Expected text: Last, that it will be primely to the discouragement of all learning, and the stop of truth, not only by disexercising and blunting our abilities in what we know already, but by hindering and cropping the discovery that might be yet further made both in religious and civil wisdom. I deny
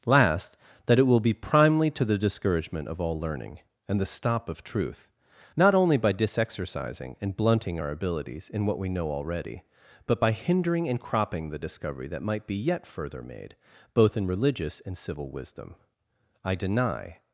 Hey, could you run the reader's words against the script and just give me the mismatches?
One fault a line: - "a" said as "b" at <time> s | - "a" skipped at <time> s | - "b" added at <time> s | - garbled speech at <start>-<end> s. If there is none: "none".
none